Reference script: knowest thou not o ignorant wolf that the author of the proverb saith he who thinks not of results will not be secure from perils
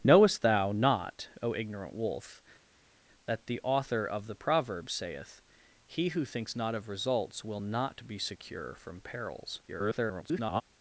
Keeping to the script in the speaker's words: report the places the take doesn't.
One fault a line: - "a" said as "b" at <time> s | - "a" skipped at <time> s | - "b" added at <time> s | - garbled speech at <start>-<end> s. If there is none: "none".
- garbled speech at 9.7-10.6 s